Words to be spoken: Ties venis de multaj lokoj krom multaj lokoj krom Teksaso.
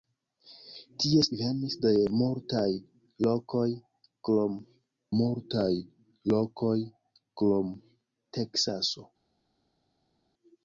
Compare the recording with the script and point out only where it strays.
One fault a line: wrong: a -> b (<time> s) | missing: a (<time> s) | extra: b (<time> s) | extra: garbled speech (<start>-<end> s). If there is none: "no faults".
no faults